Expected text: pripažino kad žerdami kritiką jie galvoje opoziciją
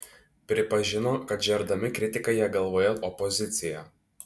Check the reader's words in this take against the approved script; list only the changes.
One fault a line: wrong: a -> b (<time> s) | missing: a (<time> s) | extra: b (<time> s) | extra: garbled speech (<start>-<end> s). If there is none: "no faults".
no faults